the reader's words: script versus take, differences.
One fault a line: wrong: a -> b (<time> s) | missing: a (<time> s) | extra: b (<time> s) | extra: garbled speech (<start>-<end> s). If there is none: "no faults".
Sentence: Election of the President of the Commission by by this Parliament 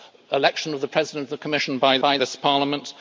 no faults